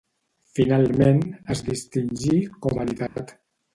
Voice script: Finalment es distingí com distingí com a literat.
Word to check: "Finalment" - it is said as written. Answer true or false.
true